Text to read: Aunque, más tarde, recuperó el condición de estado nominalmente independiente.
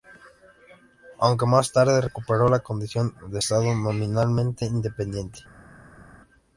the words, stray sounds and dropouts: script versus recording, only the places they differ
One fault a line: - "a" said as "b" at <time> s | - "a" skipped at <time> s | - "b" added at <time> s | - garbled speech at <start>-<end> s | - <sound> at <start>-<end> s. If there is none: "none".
- "el" said as "la" at 2.5 s